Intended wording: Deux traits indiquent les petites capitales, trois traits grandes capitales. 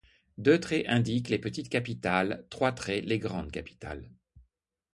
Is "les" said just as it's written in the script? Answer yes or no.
yes